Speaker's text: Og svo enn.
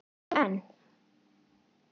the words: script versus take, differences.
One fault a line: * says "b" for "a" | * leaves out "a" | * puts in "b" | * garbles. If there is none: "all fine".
all fine